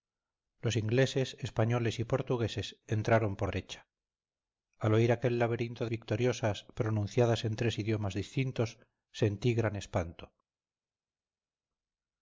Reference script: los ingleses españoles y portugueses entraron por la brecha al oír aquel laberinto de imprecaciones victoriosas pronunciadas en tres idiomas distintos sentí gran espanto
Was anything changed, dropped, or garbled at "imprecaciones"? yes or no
yes